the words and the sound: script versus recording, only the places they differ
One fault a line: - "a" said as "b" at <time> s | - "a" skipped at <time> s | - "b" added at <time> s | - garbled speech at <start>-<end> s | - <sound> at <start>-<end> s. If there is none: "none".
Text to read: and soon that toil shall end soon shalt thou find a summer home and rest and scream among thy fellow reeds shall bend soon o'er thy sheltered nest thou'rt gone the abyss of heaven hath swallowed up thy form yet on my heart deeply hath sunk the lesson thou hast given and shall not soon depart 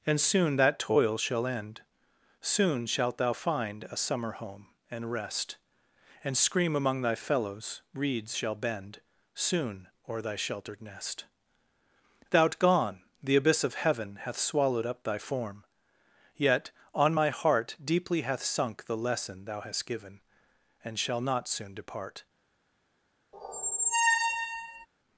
- "fellow" said as "fellows" at 7.2 s
- squeak at 23.3-24.9 s